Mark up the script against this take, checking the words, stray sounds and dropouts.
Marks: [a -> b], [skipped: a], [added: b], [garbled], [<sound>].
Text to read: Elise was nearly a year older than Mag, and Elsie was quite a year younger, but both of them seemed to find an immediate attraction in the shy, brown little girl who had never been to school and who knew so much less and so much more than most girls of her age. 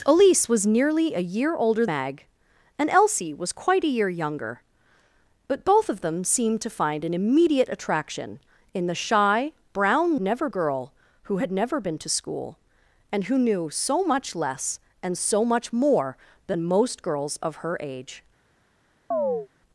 Elise was nearly a year older [skipped: than] Mag, and Elsie was quite a year younger, but both of them seemed to find an immediate attraction in the shy, brown [little -> never] girl who had never been to school and who knew so much less and so much more than most girls of her age. [chirp]